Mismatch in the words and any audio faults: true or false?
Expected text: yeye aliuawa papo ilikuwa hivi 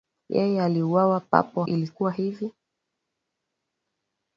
false